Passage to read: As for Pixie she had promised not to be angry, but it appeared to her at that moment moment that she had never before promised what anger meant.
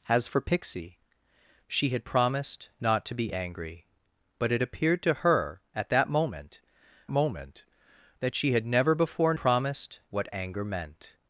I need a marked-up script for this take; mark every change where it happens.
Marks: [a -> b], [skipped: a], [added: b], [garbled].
As for Pixie she had promised not to be angry, but it appeared to her at that moment moment that she had never before promised what anger meant.